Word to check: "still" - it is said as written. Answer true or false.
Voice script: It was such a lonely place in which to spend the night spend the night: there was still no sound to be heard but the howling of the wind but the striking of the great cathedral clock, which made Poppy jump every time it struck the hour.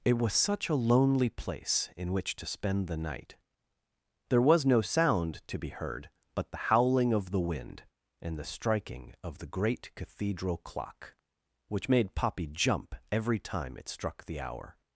false